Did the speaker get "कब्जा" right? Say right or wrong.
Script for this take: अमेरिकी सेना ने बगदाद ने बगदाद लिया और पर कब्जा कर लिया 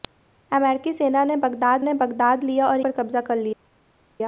right